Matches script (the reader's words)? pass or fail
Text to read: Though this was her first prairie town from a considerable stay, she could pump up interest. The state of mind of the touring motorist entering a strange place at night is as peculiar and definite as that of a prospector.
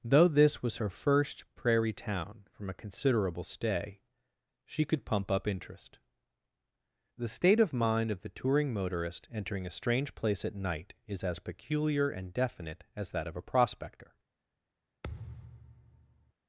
pass